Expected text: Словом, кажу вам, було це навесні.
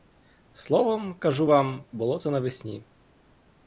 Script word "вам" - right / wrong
right